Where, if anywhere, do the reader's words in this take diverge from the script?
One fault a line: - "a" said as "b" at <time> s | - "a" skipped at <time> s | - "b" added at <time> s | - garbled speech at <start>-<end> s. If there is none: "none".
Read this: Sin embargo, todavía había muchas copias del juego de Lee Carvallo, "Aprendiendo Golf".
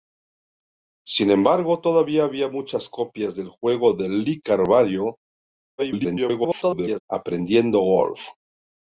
- garbled speech at 5.8-7.0 s